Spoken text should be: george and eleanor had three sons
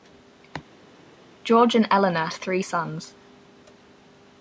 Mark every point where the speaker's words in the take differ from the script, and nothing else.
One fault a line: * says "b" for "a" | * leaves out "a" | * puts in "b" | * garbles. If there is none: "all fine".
* leaves out "had"